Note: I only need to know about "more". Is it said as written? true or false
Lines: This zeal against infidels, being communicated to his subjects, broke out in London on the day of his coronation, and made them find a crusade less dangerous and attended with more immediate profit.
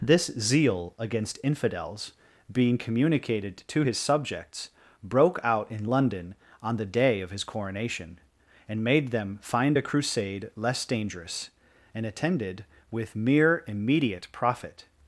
false